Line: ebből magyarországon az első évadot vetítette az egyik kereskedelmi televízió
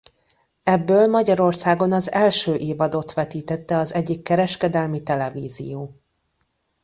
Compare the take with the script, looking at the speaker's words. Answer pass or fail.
pass